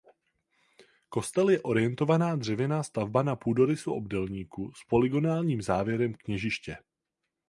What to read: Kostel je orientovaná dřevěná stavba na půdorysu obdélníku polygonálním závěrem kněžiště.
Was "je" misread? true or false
false